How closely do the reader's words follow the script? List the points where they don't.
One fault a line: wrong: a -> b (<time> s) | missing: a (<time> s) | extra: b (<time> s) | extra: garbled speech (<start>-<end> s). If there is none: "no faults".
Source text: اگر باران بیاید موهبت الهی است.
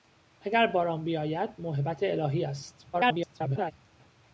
extra: garbled speech (2.9-3.7 s)